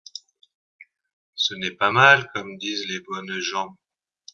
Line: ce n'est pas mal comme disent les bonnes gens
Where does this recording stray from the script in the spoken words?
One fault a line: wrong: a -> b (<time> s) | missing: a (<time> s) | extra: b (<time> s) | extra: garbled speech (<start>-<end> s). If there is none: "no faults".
no faults